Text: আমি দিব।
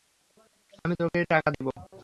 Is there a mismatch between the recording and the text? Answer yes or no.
yes